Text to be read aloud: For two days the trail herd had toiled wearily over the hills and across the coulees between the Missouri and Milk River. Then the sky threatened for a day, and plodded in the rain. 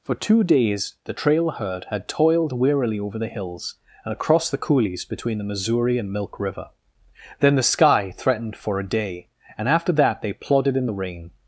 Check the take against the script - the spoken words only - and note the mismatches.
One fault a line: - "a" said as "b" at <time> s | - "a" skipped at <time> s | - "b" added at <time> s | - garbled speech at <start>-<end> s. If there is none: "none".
- "after that they" added at 9.7 s